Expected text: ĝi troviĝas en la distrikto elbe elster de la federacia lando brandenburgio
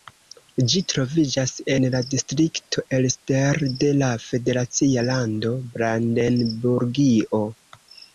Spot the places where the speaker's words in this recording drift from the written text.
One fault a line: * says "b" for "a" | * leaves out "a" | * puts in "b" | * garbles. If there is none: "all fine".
* leaves out "elbe"